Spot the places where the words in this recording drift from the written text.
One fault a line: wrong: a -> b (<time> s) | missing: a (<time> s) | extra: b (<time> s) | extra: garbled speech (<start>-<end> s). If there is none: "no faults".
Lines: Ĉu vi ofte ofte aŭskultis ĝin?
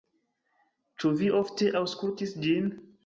missing: ofte (1.7 s)